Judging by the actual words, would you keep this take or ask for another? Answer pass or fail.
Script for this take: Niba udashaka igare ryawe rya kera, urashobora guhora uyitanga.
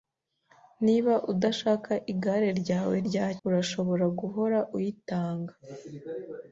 fail